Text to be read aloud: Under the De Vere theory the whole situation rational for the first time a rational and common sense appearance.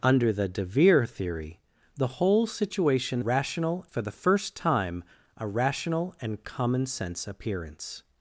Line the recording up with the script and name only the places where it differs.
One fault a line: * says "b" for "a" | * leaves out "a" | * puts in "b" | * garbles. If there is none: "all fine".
all fine